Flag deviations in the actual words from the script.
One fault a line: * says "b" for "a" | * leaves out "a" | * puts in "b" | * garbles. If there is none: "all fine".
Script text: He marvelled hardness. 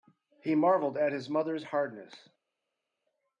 * puts in "at his mother's"